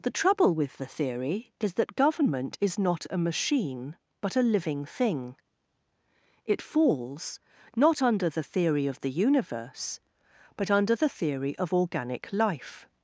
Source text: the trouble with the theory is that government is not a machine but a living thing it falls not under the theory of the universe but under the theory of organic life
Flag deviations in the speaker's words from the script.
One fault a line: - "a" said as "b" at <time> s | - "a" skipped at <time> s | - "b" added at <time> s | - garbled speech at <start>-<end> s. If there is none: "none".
none